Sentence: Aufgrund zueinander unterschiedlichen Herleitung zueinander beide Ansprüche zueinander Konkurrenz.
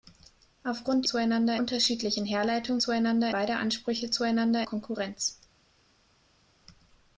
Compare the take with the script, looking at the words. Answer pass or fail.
pass